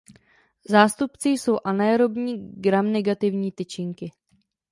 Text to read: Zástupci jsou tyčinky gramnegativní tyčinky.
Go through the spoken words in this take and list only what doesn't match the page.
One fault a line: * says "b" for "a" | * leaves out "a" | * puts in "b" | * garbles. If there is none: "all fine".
* says "anaerobní" for "tyčinky"